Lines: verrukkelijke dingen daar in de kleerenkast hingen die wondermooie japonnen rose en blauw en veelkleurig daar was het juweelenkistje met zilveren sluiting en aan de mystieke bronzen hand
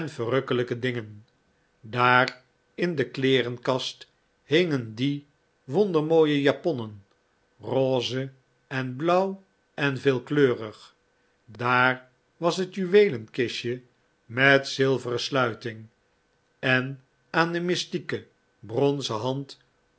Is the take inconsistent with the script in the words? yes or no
no